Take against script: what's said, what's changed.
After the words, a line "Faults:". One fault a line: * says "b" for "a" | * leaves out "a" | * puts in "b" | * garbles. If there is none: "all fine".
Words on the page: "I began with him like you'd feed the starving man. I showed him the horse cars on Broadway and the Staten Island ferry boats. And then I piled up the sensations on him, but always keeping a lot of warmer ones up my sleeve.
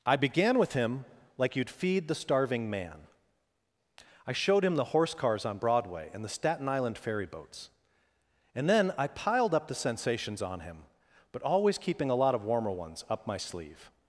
"I began with him like you'd feed the starving man. I showed him the horse cars on Broadway and the Staten Island ferry boats. And then I piled up the sensations on him, but always keeping a lot of warmer ones up my sleeve.
Faults:
all fine